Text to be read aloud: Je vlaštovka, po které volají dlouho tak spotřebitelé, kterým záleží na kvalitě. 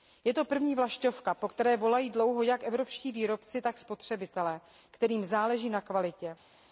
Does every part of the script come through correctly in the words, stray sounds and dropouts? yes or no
no